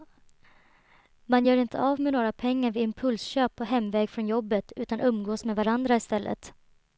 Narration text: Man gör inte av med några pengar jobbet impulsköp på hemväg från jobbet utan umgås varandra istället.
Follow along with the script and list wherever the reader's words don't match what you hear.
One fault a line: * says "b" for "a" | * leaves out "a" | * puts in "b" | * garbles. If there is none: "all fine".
* says "vid" for "jobbet"
* puts in "med"